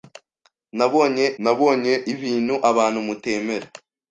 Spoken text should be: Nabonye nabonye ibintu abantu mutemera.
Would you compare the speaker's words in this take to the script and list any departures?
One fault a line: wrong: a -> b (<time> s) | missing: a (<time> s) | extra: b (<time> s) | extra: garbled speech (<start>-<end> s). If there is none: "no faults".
no faults